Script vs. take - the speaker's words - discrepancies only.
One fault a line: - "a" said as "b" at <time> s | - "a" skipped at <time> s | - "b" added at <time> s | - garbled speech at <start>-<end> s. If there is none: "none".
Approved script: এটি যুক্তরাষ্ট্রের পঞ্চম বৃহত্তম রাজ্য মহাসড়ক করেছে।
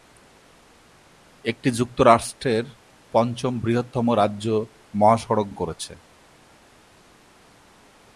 none